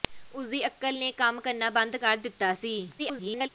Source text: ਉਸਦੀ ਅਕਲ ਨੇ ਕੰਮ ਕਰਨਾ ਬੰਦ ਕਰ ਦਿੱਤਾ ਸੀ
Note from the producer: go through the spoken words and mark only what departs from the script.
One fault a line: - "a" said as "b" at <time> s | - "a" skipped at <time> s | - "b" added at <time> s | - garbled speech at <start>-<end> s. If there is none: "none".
- garbled speech at 3.0-3.5 s